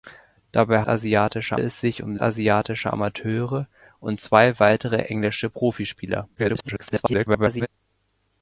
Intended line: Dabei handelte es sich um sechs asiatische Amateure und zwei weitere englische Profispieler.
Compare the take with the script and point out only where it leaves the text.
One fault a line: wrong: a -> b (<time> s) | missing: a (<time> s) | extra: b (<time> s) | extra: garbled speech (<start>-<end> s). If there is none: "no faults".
wrong: handelte -> asiatische (0.8 s)
missing: sechs (2.1 s)
extra: garbled speech (6.4-7.7 s)